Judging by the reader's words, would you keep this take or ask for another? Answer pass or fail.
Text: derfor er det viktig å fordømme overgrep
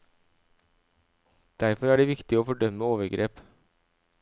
pass